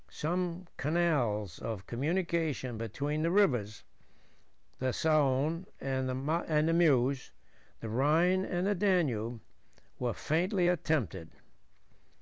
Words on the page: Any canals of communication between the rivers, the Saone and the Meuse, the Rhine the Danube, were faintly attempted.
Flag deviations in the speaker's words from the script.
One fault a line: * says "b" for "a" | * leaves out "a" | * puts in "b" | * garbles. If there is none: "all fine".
* says "Some" for "Any"
* puts in "and"